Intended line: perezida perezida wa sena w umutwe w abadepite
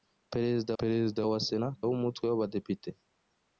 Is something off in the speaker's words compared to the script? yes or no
no